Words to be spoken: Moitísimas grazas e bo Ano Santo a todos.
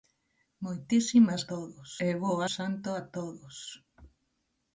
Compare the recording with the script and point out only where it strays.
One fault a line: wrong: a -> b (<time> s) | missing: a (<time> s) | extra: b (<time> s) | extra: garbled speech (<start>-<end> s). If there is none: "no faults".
wrong: grazas -> todos (1.5 s)
missing: Ano (2.3 s)